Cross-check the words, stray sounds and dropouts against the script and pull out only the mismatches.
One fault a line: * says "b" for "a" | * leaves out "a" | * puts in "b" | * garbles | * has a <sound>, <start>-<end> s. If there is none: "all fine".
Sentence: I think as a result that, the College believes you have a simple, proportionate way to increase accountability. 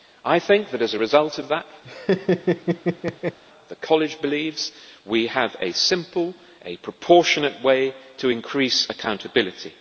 * puts in "that"
* puts in "of"
* has a laugh, 1.8-3.4 s
* says "we" for "you"